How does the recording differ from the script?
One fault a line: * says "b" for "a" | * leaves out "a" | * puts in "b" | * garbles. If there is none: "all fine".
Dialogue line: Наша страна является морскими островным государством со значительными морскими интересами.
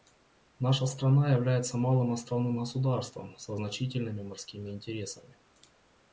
* says "малым" for "морскими"